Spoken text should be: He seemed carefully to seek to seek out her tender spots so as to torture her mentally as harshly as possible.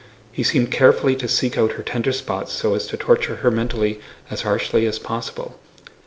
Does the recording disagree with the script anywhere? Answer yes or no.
yes